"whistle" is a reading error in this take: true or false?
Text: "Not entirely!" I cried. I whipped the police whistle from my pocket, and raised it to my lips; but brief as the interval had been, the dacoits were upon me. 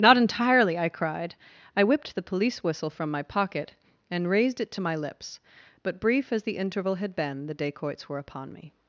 false